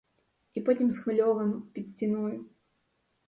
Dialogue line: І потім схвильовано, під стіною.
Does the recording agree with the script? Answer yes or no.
yes